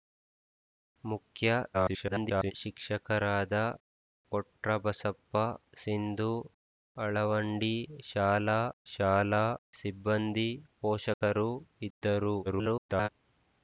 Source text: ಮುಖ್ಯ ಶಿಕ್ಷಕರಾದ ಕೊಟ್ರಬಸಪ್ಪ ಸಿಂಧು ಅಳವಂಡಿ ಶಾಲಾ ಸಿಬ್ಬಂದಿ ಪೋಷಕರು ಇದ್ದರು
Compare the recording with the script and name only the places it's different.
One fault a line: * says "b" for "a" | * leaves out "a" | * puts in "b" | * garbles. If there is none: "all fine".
* garbles
* puts in "ಶಾಲಾ"
* garbles